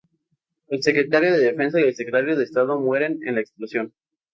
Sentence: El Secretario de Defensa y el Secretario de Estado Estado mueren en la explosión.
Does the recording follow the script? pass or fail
fail